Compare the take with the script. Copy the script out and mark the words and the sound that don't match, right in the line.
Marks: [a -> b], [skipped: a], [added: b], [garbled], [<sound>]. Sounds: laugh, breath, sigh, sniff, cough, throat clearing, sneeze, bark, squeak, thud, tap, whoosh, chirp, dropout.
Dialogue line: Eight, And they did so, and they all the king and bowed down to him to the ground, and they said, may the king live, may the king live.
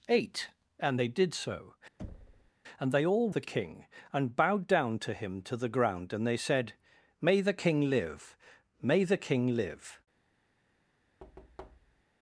Eight, And they did so, [thud] and they all the king and bowed down to him to the ground, and they said, may the king live, may the king live. [thud]